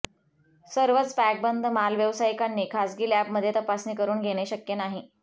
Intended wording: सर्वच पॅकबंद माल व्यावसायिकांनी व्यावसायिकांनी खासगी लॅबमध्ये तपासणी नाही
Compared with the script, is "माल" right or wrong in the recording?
right